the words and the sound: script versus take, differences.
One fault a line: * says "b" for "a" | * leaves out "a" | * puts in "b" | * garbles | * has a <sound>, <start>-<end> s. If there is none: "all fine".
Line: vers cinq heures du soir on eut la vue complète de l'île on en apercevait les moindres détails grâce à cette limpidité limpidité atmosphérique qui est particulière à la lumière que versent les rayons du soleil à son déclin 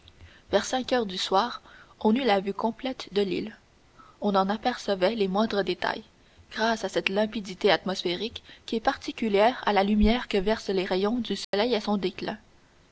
* leaves out "limpidité"
* has a dropout, 11.4-11.5 s